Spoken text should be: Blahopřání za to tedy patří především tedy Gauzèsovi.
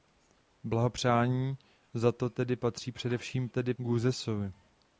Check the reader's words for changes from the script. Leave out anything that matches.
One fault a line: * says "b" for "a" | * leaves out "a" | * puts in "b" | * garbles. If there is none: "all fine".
all fine